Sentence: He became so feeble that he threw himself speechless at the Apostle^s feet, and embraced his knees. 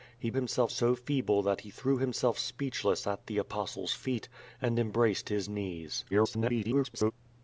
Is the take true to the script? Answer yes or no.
no